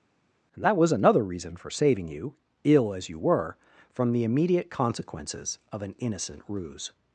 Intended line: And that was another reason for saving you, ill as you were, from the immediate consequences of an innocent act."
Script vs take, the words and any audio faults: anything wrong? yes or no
yes